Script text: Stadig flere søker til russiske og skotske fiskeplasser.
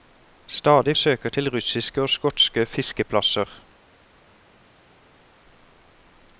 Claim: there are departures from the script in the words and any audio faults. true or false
true